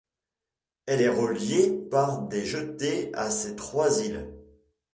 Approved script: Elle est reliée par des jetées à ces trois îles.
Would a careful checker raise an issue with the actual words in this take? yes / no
no